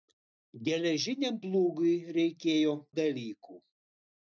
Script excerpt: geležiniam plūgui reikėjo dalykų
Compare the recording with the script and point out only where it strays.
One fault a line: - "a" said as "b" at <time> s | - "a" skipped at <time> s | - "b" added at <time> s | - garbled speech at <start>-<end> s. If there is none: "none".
none